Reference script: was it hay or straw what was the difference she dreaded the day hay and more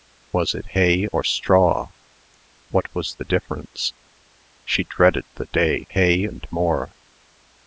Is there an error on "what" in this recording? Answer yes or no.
no